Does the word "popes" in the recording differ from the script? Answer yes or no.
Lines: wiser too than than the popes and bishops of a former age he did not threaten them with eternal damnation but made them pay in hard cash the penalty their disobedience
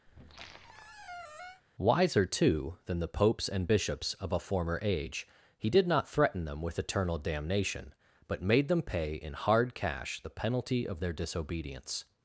no